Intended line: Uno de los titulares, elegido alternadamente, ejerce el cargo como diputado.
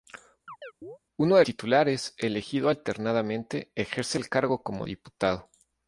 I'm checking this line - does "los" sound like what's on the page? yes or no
no